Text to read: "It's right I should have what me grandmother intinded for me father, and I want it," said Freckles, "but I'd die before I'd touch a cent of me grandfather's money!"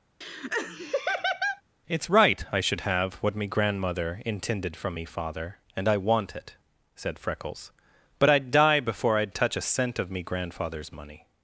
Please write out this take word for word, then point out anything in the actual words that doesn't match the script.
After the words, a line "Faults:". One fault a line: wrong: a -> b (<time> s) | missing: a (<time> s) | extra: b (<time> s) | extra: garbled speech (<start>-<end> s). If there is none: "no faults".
"It's right I should have what me grandmother intinded from me father, and I want it," said Freckles, "but I'd die before I'd touch a cent of me grandfather's money!"
Faults:
wrong: for -> from (4.8 s)